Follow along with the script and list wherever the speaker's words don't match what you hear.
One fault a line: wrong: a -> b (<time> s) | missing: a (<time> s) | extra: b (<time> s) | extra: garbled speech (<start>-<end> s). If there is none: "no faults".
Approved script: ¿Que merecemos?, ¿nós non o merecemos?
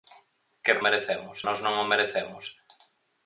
no faults